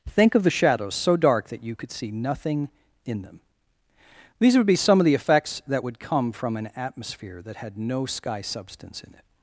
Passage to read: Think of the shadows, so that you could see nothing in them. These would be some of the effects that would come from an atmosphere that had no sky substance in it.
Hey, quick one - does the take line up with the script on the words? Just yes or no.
no